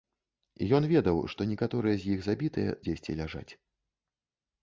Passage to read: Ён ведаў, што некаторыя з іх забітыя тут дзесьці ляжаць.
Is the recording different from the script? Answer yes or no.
yes